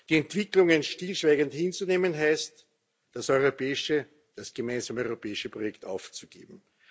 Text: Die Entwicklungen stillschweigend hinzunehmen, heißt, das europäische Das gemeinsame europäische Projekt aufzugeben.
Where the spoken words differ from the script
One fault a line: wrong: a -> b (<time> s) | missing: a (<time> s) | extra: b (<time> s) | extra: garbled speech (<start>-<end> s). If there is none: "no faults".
no faults